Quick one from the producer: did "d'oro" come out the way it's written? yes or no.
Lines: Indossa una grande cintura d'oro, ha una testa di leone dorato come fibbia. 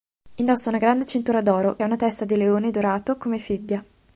yes